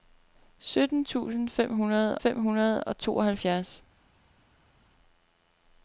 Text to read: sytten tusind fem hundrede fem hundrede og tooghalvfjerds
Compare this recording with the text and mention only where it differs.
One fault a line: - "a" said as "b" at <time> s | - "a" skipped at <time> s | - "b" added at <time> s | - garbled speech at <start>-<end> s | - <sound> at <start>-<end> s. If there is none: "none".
none